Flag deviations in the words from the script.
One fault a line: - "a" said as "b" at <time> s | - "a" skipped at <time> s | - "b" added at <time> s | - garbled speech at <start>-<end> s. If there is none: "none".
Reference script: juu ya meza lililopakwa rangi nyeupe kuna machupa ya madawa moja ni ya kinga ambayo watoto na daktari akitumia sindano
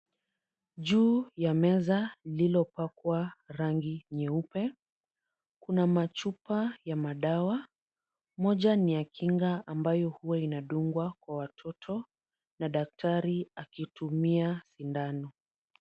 - "huwa inadungwa kwa" added at 10.1 s